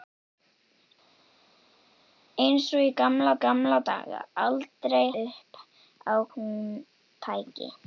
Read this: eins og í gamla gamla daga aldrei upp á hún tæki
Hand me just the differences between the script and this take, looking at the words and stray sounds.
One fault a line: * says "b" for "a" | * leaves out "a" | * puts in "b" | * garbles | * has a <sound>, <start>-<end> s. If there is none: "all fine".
all fine